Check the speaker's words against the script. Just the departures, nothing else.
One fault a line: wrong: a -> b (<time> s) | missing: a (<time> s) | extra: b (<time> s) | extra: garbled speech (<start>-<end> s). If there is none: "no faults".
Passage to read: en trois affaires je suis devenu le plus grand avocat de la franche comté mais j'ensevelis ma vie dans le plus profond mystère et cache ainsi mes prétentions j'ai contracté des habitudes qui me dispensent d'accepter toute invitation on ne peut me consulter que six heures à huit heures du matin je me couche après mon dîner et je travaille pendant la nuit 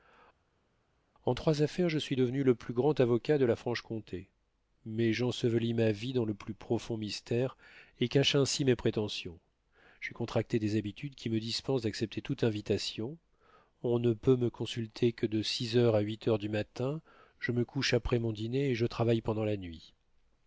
extra: de (15.3 s)